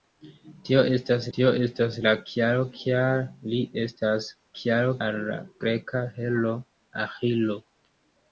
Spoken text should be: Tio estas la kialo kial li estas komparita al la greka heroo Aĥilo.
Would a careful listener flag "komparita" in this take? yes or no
yes